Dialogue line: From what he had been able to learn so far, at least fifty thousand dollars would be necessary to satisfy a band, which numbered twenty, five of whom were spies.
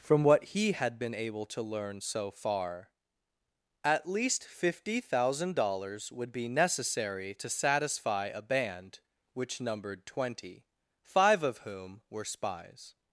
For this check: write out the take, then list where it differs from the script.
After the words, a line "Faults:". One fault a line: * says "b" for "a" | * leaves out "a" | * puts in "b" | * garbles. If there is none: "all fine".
From what he had been able to learn so far, at least fifty thousand dollars would be necessary to satisfy a band, which numbered twenty, five of whom were spies.
Faults:
all fine